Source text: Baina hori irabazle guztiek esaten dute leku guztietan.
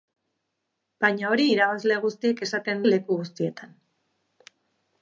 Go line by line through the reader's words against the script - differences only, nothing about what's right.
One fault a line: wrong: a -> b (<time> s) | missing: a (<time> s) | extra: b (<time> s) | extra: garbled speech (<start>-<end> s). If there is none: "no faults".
missing: dute (2.8 s)